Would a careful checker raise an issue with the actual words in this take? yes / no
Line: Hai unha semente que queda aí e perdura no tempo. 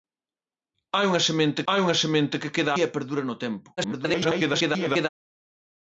yes